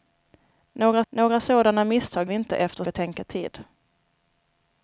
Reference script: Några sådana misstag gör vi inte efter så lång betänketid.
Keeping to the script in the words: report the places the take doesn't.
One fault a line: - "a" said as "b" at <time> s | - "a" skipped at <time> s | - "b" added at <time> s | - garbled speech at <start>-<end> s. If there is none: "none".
- "några" added at 1.1 s
- "gör" skipped at 2.3 s
- "så lång" skipped at 2.8 s